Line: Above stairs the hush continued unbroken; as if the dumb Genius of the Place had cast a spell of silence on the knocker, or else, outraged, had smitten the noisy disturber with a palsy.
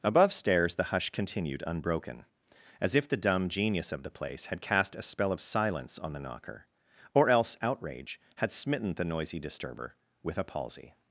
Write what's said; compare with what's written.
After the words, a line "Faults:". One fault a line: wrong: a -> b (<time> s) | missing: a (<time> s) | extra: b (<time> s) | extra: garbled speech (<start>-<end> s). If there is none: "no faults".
Above stairs the hush continued unbroken; as if the dumb Genius of the Place had cast a spell of silence on the knocker, or else, outrage, had smitten the noisy disturber with a palsy.
Faults:
wrong: outraged -> outrage (7.6 s)